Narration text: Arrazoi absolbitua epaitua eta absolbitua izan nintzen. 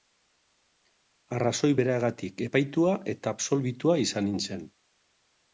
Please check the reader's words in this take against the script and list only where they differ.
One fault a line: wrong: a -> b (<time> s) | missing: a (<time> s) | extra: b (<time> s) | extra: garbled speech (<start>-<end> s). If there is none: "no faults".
wrong: absolbitua -> beragatik (1.8 s)